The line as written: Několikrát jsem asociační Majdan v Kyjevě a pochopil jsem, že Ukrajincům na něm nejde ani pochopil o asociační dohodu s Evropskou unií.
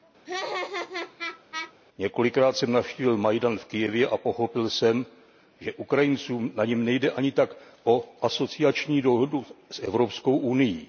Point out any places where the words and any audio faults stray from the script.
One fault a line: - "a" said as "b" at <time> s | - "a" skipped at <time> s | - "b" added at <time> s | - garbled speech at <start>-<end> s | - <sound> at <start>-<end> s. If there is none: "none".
- laugh at 0.2-1.7 s
- "asociační" said as "navštívil" at 2.7 s
- "pochopil" said as "tak" at 7.3 s